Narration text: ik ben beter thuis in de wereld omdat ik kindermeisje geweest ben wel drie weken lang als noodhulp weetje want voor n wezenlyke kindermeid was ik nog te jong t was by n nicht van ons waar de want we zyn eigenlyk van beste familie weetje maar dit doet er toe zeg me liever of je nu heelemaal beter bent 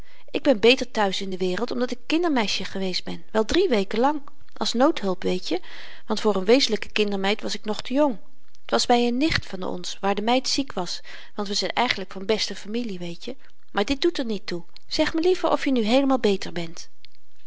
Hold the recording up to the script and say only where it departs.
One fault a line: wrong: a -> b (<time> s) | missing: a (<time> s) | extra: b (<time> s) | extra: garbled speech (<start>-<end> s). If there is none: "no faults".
extra: meid ziek was (10.2 s)
extra: niet (14.2 s)